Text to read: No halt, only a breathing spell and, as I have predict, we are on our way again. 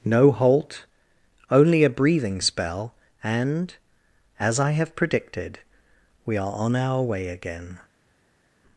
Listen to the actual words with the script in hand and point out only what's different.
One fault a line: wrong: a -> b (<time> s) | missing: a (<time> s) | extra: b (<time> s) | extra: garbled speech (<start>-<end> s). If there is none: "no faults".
wrong: predict -> predicted (5.0 s)